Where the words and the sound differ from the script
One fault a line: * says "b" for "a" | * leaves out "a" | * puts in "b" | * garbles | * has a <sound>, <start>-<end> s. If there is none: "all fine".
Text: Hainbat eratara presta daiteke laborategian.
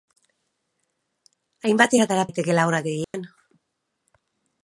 * leaves out "presta"
* has a dropout, 3.0-3.1 s